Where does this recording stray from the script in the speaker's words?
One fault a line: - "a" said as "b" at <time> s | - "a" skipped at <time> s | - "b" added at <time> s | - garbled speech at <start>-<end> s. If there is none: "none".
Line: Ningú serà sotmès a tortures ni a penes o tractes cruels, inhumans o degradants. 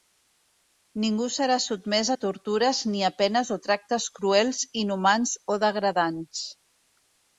none